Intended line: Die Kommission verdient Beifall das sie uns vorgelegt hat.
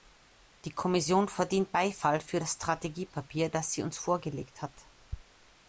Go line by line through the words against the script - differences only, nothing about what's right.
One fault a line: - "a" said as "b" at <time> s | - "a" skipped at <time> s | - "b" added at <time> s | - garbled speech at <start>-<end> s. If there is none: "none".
- "für das Strategiepapier" added at 2.2 s